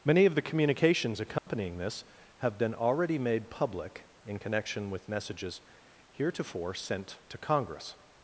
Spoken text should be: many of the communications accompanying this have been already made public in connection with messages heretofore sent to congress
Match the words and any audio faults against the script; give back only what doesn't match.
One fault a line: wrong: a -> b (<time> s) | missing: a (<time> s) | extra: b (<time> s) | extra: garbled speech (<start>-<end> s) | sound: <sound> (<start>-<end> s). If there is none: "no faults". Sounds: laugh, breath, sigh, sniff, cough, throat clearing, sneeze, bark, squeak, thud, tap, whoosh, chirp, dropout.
sound: dropout (1.4-1.5 s)